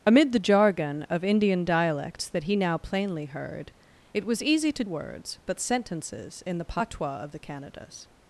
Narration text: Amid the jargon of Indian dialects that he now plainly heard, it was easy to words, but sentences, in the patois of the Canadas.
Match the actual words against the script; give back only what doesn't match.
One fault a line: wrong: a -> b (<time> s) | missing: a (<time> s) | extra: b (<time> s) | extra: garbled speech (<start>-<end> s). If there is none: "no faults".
no faults